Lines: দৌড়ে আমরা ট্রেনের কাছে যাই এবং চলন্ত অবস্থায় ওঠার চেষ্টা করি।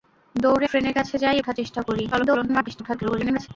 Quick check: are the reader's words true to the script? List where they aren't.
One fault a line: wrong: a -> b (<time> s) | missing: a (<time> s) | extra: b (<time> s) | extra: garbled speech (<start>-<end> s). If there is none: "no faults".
missing: আমরা (0.7 s)
missing: এবং চলন্ত অবস্থায় (1.4 s)
extra: garbled speech (2.1-3.5 s)